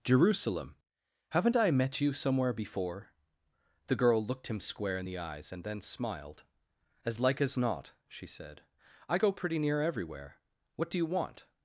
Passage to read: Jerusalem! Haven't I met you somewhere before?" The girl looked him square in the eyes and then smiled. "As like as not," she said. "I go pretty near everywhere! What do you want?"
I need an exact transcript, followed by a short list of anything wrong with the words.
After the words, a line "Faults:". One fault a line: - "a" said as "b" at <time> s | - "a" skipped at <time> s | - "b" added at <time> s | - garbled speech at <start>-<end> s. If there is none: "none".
Jerusalem! Haven't I met you somewhere before?" The girl looked him square in the eyes and then smiled. "As like as not," she said. "I go pretty near everywhere! What do you want?"
Faults:
none